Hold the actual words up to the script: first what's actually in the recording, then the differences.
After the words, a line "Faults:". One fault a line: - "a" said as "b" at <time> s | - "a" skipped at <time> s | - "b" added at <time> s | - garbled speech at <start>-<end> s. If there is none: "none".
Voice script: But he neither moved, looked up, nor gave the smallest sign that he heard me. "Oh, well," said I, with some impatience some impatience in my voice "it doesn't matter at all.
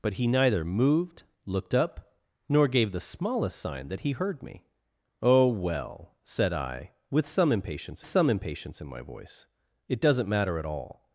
But he neither moved, looked up, nor gave the smallest sign that he heard me. "Oh, well," said I, with some impatience some impatience in my voice "it doesn't matter at all.
Faults:
none